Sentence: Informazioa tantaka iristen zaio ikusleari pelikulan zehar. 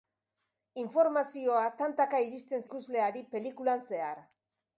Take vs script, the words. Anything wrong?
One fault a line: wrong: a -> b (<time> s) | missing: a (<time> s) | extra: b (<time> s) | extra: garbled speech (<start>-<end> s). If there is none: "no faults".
missing: zaio (2.7 s)